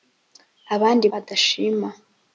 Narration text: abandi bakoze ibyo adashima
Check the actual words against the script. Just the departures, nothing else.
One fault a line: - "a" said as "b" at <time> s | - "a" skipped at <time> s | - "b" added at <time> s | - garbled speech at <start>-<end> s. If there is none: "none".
- "bakoze ibyo" skipped at 1.1 s